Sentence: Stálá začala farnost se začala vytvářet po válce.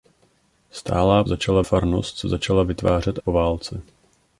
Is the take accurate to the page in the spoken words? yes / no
yes